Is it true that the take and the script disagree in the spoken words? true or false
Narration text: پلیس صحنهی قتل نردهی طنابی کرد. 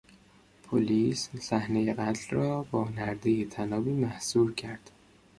true